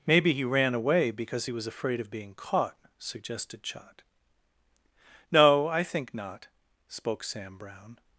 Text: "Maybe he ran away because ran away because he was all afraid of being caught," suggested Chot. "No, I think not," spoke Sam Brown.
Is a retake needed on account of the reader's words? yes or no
yes